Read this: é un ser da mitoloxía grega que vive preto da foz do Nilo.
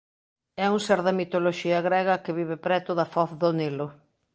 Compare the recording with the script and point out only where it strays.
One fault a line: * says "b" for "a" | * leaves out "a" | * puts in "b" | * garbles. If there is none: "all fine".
all fine